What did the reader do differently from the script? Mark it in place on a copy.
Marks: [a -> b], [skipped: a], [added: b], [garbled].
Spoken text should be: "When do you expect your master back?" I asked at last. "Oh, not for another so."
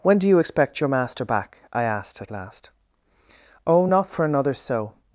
"When do you expect your master back?" I asked at last. "Oh, not for another so."